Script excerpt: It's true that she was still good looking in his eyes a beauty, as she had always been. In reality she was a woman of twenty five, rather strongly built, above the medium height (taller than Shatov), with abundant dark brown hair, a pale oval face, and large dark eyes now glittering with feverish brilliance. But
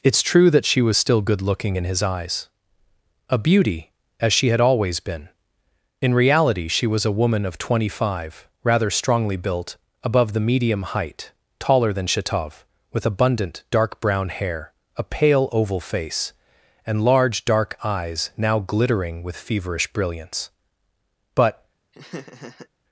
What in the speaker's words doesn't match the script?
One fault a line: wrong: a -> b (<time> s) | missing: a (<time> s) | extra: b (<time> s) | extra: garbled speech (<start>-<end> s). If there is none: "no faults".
no faults